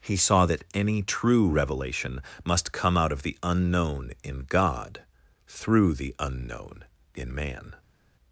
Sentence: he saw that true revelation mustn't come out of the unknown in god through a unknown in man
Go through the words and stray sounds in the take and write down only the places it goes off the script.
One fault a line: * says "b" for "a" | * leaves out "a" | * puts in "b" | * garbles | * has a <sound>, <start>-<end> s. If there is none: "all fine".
* puts in "any"
* says "must" for "mustn't"
* says "the" for "a"